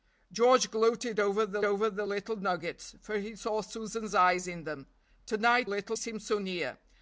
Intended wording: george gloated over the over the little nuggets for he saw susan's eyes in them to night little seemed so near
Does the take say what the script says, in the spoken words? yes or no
yes